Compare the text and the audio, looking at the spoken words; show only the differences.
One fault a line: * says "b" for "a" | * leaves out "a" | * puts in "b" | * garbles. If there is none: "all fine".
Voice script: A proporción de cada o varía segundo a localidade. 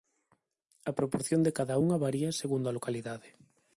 * says "unha" for "o"